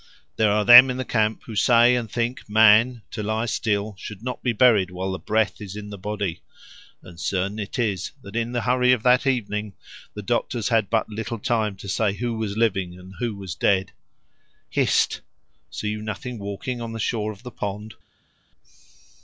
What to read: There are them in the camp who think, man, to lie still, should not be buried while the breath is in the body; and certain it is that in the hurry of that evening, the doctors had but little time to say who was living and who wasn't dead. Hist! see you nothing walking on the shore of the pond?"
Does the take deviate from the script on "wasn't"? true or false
true